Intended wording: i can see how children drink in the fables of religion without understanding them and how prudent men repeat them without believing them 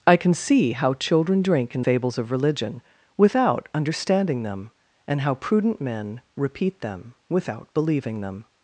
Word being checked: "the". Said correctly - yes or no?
no